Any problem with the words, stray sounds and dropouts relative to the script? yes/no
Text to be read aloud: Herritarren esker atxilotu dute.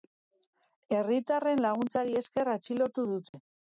yes